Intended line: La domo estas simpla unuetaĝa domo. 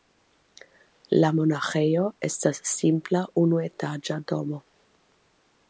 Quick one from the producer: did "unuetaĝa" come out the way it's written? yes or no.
yes